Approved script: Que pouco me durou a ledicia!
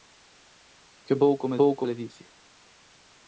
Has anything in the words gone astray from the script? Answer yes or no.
yes